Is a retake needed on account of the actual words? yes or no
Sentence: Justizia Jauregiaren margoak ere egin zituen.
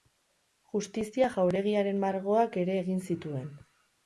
no